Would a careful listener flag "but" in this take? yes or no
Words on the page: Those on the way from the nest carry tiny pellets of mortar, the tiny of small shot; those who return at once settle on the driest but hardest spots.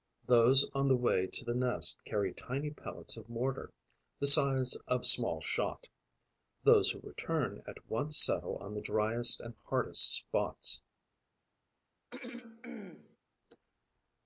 yes